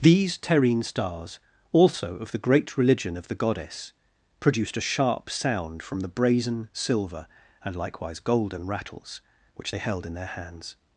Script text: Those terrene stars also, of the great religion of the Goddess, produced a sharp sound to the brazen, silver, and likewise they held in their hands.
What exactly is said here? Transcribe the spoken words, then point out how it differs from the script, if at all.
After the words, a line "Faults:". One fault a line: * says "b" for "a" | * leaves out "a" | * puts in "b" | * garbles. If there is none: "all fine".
These terrene stars also, of the great religion of the Goddess, produced a sharp sound from the brazen, silver, and likewise golden rattles, which they held in their hands.
Faults:
* says "These" for "Those"
* says "from" for "to"
* puts in "golden rattles which"